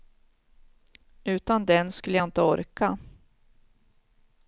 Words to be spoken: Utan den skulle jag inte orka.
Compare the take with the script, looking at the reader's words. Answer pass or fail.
pass